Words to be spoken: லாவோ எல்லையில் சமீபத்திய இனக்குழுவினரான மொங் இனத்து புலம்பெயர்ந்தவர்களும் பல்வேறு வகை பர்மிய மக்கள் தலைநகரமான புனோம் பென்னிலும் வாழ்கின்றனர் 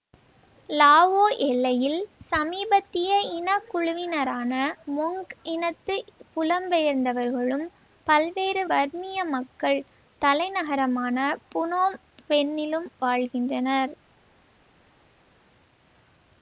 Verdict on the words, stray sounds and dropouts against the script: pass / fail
fail